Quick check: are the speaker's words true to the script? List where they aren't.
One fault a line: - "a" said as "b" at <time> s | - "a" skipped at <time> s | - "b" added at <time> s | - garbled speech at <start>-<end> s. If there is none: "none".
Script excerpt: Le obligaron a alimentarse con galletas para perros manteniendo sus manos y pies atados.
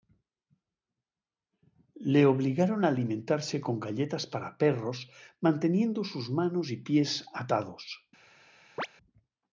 none